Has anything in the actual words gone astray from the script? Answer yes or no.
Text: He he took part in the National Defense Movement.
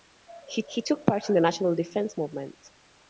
no